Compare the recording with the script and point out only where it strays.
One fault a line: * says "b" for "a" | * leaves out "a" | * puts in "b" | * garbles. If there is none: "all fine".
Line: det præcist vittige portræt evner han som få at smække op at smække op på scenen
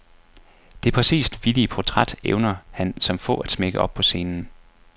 * leaves out "at smække op"